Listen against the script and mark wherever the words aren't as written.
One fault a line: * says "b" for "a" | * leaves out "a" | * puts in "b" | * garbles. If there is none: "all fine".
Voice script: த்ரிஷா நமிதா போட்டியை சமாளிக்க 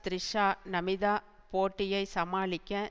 all fine